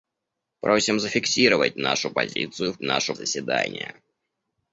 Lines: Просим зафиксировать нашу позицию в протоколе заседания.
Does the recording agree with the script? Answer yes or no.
no